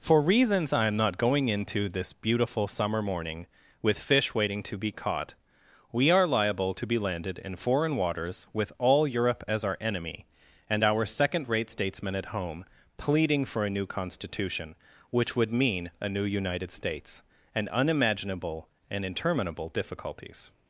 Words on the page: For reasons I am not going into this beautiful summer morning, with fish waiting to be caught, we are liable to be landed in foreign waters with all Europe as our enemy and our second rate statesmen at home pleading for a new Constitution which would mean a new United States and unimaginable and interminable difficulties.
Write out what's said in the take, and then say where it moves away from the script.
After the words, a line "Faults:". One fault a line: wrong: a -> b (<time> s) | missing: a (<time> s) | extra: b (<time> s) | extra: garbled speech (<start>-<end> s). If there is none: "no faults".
For reasons I am not going into this beautiful summer morning, with fish waiting to be caught, we are liable to be landed in foreign waters with all Europe as our enemy and our second rate statesmen at home pleading for a new Constitution which would mean a new United States and unimaginable and interminable difficulties.
Faults:
no faults